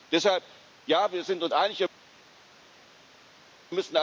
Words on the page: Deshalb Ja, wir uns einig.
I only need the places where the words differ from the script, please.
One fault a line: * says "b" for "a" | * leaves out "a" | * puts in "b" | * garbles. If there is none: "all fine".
* puts in "sind"